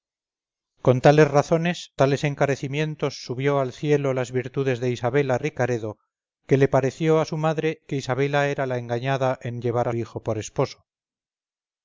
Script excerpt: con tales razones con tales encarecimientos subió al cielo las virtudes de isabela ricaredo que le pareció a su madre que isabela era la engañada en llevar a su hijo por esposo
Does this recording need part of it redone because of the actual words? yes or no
yes